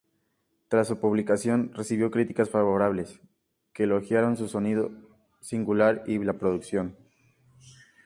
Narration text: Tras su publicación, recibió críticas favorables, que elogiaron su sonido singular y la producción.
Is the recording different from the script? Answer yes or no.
no